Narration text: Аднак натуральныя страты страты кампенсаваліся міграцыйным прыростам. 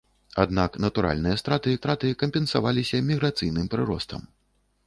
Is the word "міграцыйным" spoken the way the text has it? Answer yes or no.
yes